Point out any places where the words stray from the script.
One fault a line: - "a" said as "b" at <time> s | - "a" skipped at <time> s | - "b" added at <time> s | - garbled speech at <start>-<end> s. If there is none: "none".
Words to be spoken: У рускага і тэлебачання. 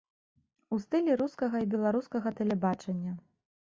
- "стылі" added at 0.8 s
- "беларускага" added at 1.8 s